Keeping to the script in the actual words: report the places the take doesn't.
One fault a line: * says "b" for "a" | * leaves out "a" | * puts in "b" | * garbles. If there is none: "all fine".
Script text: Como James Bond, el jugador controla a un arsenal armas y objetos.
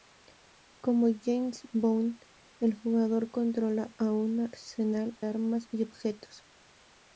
all fine